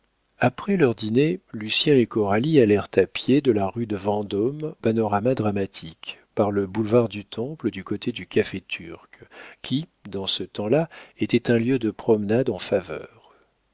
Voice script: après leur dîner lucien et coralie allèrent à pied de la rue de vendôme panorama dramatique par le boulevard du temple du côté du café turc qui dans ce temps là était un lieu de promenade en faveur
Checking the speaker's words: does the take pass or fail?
pass